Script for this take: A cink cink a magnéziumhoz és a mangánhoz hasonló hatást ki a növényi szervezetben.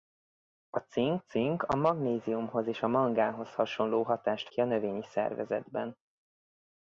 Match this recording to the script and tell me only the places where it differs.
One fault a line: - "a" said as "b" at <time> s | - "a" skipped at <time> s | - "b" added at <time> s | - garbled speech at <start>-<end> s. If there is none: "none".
none